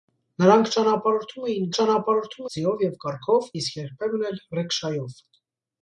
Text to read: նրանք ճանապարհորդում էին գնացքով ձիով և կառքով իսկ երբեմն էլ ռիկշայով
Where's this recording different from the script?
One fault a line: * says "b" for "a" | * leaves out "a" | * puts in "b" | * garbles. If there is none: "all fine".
* says "ճանապարհորդում" for "գնացքով"